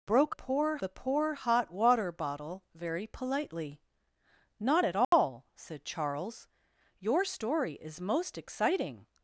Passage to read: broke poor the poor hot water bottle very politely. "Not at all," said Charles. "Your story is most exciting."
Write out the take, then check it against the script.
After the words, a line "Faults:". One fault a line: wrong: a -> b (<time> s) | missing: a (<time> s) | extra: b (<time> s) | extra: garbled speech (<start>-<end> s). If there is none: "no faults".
broke poor the poor hot water bottle very politely. "Not at all," said Charles. "Your story is most exciting."
Faults:
no faults